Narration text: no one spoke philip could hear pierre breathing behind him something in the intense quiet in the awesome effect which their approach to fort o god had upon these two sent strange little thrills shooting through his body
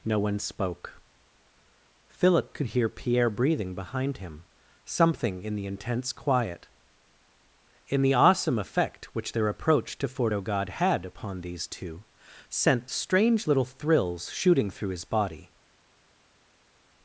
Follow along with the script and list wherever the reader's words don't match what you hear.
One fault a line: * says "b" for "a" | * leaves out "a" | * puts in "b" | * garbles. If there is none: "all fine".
all fine